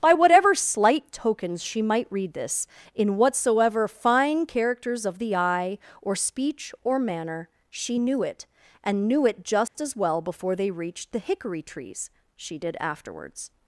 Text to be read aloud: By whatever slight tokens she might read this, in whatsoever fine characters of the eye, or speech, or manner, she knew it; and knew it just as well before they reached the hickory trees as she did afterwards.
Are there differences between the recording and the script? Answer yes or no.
yes